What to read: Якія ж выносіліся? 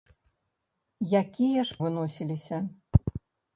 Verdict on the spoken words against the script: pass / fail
pass